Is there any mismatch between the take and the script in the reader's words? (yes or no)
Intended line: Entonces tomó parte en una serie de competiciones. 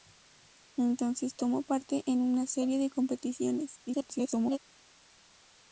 yes